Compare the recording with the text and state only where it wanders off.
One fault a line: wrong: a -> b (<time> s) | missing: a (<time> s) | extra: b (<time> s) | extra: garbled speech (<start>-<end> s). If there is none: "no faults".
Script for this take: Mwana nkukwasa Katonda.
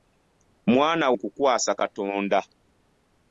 no faults